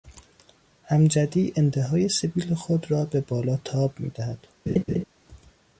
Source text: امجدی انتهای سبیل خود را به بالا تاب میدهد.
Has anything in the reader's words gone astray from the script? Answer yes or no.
no